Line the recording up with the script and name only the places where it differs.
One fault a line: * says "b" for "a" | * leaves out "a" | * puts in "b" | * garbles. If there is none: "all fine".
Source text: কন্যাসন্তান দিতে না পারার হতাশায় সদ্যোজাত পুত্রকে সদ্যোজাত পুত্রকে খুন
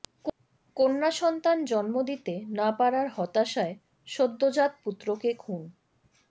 * puts in "জন্ম"
* leaves out "সদ্যোজাত পুত্রকে"